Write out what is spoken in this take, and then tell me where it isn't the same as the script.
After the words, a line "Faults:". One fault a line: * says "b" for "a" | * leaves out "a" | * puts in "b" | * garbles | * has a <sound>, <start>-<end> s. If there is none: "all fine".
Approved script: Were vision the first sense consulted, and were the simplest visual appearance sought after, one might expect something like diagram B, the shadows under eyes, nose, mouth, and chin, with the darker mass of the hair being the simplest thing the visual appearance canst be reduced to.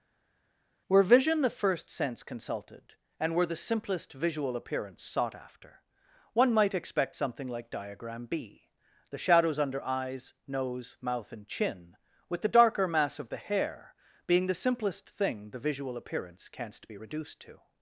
Were vision the first sense consulted, and were the simplest visual appearance sought after, one might expect something like diagram B, the shadows under eyes, nose, mouth, and chin, with the darker mass of the hair being the simplest thing the visual appearance canst be reduced to.
Faults:
all fine